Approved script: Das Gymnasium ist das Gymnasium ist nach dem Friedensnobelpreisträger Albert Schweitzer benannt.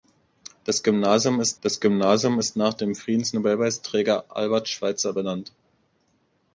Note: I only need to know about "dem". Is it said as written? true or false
true